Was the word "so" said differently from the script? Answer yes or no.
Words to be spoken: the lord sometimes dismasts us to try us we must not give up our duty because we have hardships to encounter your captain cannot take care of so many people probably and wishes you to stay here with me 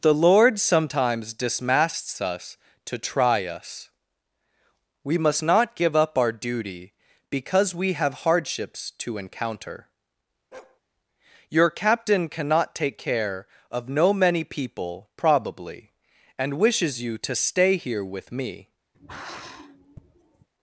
yes